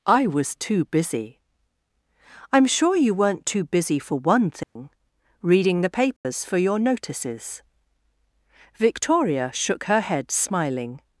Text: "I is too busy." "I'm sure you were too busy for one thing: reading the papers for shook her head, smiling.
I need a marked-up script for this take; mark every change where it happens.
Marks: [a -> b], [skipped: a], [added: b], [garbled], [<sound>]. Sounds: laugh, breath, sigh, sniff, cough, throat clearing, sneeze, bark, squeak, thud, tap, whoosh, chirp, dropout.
"I [is -> was] too busy." "I'm sure you [were -> weren't] too busy for one thing: [dropout] reading the papers [dropout] for [added: your notices Victoria] shook her head, smiling.